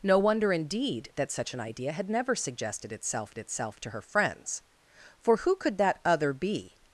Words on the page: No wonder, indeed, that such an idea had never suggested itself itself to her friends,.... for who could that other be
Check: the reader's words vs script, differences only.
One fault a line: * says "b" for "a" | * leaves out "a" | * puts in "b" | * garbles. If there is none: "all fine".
all fine